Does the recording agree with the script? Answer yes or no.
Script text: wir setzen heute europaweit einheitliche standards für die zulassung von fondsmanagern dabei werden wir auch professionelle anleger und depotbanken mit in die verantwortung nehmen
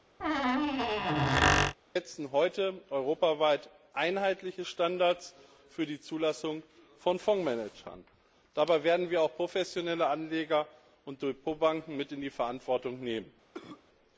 yes